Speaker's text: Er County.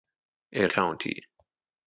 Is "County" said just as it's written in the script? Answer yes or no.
yes